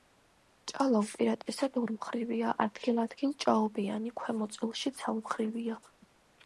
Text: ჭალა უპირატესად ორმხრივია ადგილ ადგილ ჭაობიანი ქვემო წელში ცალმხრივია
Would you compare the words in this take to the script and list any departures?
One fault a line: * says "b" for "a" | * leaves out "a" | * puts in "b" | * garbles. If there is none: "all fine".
all fine